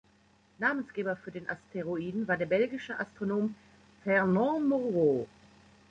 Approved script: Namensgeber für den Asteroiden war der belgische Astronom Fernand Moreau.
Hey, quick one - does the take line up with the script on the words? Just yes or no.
yes